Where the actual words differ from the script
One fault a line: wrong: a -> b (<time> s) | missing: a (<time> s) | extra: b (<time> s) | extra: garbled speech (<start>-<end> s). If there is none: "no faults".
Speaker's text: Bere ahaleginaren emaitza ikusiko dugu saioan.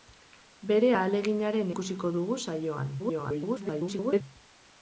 missing: emaitza (1.7 s)
extra: garbled speech (3.0-4.2 s)